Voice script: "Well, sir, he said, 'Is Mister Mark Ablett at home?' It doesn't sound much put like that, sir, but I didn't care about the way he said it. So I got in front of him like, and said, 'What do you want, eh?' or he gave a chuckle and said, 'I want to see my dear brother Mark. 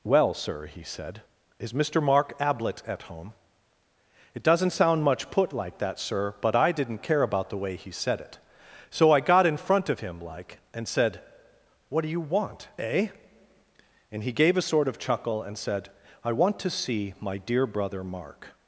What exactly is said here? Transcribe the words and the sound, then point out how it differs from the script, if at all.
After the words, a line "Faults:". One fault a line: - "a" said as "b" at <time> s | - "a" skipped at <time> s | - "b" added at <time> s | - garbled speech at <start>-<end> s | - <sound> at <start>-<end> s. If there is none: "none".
"Well, sir, he said, 'Is Mister Mark Ablett at home?' It doesn't sound much put like that, sir, but I didn't care about the way he said it. So I got in front of him like, and said, 'What do you want, eh?' and he gave a sort of chuckle and said, 'I want to see my dear brother Mark.
Faults:
- "or" said as "and" at 14.1 s
- "sort of" added at 14.6 s